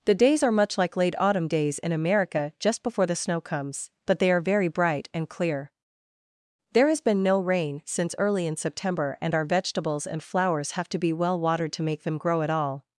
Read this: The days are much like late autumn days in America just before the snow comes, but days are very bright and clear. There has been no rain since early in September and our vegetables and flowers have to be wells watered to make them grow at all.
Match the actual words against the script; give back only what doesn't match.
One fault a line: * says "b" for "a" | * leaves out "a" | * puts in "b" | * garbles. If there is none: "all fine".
* says "they" for "days"
* says "well" for "wells"